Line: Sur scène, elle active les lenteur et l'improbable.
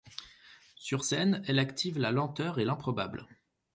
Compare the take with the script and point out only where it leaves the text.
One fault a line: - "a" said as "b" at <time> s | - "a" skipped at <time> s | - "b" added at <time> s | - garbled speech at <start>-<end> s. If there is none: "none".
- "les" said as "la" at 2.0 s